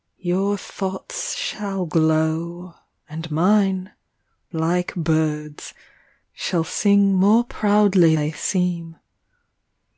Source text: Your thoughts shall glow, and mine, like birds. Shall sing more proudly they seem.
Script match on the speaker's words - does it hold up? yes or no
yes